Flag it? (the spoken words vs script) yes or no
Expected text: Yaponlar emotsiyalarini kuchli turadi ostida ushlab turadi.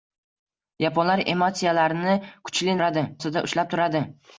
no